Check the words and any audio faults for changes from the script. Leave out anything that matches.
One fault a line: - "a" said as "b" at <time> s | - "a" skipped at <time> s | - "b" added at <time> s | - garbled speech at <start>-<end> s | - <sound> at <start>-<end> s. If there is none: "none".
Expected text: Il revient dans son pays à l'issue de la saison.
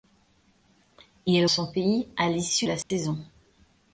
- "revient dans" skipped at 1.4 s
- "de" skipped at 2.7 s
- dropout at 2.8-2.9 s